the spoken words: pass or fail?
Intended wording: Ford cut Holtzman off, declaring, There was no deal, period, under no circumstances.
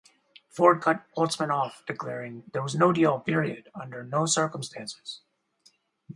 pass